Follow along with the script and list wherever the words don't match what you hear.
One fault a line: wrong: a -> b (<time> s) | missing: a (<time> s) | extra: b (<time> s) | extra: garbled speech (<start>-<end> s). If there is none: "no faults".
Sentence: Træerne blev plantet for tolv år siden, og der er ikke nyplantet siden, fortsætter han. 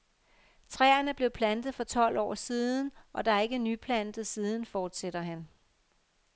no faults